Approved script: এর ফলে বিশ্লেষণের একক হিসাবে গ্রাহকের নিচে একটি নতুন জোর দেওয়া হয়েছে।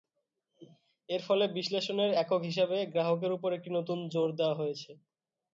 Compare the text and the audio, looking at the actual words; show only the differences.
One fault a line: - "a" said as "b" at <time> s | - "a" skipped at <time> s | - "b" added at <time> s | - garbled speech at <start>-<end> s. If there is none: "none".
- "নিচে" said as "উপর" at 3.4 s